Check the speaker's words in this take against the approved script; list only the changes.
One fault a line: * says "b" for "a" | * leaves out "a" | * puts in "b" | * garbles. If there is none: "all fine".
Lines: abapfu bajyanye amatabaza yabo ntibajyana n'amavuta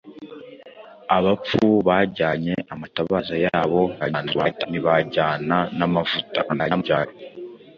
* garbles
* garbles